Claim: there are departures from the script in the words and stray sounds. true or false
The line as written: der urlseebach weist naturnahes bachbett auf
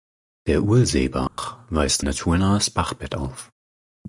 true